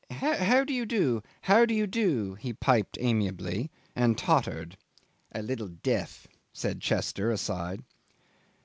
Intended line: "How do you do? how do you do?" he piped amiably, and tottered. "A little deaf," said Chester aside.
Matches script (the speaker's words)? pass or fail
pass